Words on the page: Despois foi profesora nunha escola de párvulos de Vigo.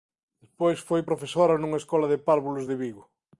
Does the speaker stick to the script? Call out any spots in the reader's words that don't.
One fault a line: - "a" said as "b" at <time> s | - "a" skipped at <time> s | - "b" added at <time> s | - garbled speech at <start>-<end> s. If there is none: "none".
none